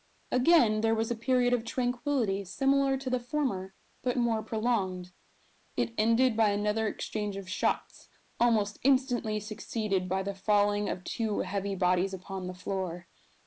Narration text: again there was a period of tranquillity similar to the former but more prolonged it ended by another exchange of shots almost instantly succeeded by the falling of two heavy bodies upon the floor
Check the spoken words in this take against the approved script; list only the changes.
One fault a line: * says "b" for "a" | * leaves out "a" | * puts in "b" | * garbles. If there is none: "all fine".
all fine